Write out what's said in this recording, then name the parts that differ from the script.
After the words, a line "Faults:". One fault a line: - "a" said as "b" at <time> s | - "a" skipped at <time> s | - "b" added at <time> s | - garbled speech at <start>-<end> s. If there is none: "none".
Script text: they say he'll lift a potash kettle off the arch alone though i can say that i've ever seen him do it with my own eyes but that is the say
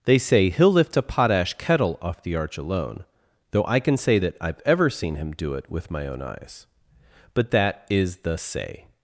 they say he'll lift a potash kettle off the arch alone though i can say that i've ever seen him do it with my own eyes but that is the say
Faults:
none